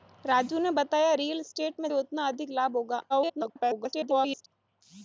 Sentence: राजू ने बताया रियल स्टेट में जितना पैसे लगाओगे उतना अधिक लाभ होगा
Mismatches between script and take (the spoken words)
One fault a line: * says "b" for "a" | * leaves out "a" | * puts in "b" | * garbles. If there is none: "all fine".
* leaves out "जितना पैसे लगाओगे"
* garbles